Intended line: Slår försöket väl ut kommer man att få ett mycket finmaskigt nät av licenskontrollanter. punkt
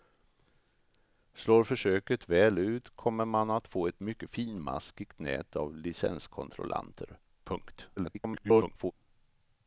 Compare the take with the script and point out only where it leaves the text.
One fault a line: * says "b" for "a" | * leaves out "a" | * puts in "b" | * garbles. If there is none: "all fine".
* garbles